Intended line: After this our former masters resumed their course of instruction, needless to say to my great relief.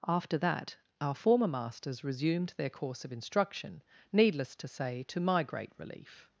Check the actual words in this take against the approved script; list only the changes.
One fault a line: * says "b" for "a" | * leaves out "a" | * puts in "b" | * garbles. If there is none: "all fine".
* says "that" for "this"